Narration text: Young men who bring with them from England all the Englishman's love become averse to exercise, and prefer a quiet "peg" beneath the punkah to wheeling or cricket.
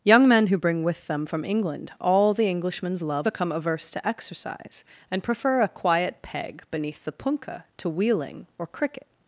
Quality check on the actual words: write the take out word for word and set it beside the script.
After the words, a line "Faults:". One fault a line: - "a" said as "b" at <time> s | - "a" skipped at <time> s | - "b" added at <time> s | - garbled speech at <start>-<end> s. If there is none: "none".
Young men who bring with them from England all the Englishman's love become averse to exercise, and prefer a quiet "peg" beneath the punkah to wheeling or cricket.
Faults:
none